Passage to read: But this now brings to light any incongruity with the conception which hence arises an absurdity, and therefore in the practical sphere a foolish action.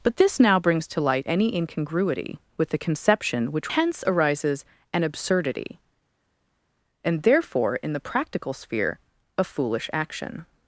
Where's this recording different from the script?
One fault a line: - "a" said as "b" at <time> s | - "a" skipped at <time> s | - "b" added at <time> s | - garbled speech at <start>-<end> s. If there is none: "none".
none